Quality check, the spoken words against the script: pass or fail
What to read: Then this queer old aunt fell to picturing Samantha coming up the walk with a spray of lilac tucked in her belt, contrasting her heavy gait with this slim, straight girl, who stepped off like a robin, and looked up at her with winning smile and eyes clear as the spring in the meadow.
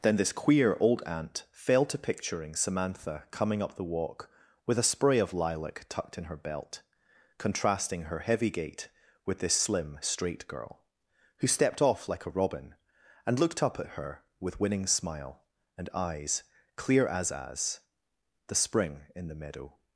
fail